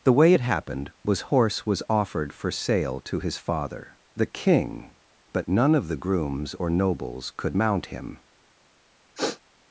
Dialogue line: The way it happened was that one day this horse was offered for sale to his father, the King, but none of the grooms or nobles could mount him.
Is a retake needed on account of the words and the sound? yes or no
yes